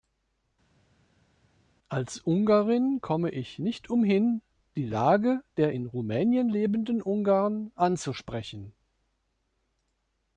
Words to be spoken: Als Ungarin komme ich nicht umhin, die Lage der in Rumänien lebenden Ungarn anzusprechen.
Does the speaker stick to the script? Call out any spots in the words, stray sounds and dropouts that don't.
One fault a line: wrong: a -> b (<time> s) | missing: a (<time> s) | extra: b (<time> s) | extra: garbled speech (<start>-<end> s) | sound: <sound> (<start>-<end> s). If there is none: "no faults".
no faults